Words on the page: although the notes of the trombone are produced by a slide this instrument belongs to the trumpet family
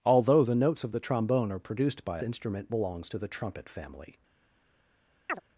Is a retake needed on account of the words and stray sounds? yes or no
yes